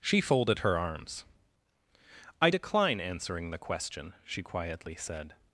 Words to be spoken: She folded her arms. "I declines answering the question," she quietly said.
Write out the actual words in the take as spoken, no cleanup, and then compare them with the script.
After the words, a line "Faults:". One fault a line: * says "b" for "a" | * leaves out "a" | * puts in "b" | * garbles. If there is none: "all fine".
She folded her arms. "I decline answering the question," she quietly said.
Faults:
* says "decline" for "declines"